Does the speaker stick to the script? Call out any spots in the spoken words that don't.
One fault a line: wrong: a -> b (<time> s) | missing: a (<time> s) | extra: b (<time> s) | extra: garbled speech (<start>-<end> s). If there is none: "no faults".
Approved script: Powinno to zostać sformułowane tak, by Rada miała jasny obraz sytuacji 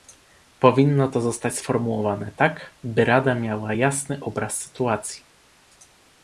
no faults